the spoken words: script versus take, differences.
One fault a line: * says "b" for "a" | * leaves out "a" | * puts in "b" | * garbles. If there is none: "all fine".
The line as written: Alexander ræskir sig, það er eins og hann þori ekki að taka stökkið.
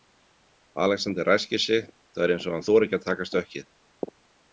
all fine